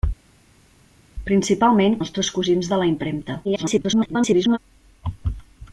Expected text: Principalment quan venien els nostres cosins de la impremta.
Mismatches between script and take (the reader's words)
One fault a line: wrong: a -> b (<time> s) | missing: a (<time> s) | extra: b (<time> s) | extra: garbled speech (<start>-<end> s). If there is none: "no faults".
missing: quan venien els (2.0 s)
extra: garbled speech (3.4-4.6 s)